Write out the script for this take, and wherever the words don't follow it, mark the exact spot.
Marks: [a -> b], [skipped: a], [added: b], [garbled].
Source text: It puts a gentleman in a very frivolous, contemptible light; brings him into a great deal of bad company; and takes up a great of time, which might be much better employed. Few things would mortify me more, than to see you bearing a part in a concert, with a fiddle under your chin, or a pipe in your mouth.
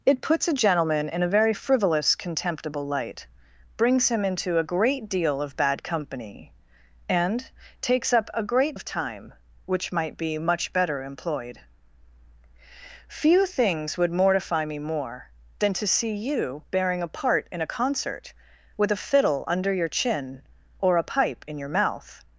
It puts a gentleman in a very frivolous, contemptible light; brings him into a great deal of bad company; and takes up a great of time, which might be much better employed. Few things would mortify me more, than to see you bearing a part in a concert, with a fiddle under your chin, or a pipe in your mouth.